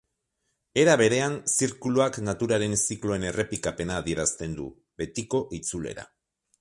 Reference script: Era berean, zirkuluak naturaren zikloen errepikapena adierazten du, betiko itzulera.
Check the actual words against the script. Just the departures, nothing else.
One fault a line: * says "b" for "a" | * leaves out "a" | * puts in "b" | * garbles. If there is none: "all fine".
all fine